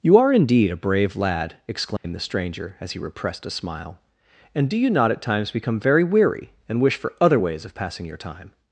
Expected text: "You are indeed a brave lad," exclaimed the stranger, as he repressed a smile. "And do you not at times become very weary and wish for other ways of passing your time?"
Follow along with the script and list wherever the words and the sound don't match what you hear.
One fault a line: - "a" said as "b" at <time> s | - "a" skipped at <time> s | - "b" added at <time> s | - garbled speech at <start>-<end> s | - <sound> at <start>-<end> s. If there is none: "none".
- dropout at 2.0-2.0 s